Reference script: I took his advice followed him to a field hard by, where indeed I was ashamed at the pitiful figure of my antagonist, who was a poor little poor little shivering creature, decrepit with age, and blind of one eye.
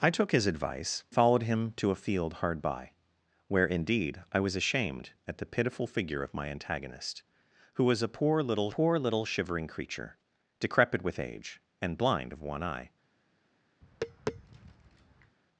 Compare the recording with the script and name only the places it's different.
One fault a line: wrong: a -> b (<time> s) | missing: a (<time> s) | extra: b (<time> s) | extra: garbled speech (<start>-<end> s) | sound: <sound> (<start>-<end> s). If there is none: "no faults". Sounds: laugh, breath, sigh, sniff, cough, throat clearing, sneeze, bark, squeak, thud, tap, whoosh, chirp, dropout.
sound: tap (13.8-15.4 s)